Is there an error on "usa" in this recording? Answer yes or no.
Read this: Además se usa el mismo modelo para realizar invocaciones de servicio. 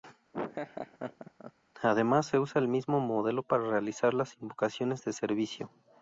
no